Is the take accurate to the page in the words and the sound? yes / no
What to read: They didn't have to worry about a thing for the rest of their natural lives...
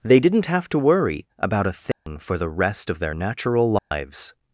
no